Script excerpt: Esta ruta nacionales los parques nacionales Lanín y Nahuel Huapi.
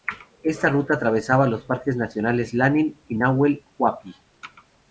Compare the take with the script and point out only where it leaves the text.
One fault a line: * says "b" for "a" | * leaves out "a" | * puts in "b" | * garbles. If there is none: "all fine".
* says "atravesaba" for "nacionales"